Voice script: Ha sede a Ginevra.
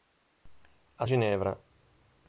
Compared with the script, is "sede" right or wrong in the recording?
wrong